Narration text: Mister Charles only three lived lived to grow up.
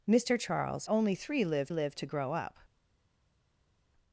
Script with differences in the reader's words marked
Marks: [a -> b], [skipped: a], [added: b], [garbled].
Mister Charles only three lived lived to grow up.